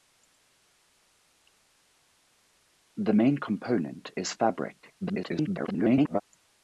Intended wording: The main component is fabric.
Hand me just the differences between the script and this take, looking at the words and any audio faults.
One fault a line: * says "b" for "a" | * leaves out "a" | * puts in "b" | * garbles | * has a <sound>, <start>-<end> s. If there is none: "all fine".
* garbles